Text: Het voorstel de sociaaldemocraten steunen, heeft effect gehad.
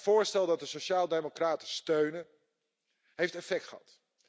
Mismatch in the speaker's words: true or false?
true